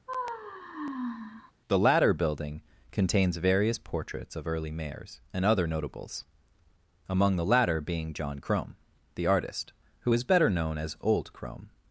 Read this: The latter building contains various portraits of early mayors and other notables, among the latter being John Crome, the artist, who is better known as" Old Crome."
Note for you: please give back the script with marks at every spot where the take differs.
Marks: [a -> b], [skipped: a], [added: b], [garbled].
The latter building contains various portraits of early mayors and other notables, among the latter being John Crome, the artist, who is better known as" Old Crome."